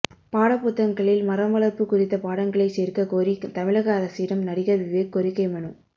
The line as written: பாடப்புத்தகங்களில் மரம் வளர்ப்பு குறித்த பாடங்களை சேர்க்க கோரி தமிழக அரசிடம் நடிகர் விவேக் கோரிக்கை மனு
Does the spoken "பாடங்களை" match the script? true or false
true